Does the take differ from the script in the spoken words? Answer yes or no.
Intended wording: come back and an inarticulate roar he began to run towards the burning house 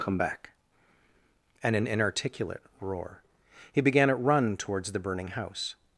yes